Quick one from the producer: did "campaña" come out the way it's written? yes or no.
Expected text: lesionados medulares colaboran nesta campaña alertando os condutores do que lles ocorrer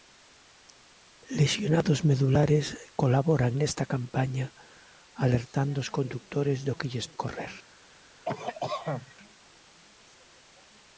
yes